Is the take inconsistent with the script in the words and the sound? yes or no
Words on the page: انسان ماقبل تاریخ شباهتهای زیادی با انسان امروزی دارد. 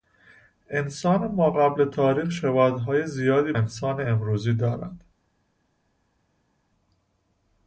yes